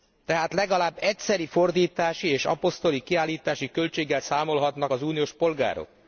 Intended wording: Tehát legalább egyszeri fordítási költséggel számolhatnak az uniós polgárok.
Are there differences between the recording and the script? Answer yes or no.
yes